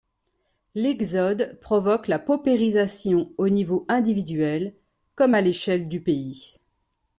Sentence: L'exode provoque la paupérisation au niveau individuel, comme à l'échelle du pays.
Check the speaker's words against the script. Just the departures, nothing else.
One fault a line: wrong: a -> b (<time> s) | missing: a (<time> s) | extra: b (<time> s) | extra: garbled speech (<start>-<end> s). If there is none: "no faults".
no faults